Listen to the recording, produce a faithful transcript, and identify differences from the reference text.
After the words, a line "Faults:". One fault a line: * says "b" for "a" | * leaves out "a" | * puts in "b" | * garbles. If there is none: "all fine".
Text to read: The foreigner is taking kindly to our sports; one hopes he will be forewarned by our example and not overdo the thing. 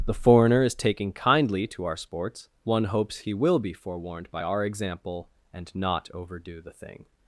The foreigner is taking kindly to our sports; one hopes he will be forewarned by our example and not overdo the thing.
Faults:
all fine